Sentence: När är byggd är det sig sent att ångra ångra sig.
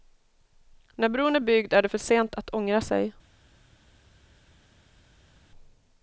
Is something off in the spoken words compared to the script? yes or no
yes